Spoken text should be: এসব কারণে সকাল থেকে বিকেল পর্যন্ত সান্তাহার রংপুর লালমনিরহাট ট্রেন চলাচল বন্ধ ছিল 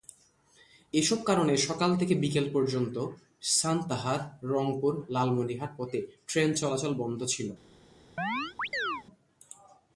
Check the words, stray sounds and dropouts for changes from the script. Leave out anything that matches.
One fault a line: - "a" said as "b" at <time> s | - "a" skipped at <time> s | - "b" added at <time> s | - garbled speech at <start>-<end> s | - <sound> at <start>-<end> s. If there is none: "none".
- "পথে" added at 5.8 s
- chirp at 8.2-9.0 s